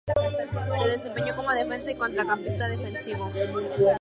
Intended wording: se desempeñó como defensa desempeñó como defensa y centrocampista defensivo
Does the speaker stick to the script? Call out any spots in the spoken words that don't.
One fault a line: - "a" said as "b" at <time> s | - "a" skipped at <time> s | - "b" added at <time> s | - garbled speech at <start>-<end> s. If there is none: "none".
- "desempeñó como defensa" skipped at 1.9 s